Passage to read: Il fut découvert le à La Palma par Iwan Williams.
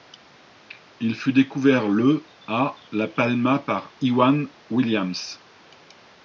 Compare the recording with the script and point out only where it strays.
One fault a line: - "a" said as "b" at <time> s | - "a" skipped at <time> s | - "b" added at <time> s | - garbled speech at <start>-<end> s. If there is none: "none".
none